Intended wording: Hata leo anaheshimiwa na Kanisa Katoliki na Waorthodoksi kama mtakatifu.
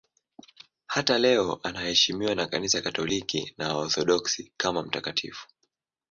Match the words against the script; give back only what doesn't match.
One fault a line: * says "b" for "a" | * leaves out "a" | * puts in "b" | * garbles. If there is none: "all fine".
all fine